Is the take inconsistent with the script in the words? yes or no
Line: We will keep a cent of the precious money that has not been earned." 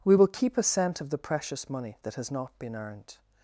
no